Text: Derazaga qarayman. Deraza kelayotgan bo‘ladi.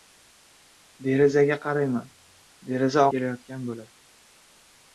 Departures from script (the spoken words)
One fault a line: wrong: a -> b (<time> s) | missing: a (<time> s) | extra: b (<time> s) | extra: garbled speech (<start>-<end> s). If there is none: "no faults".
no faults